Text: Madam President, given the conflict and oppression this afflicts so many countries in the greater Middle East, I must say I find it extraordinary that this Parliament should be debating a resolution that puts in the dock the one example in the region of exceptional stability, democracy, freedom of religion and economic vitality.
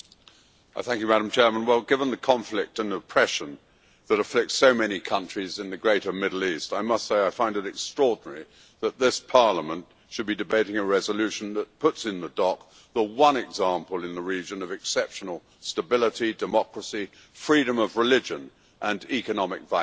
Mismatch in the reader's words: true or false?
true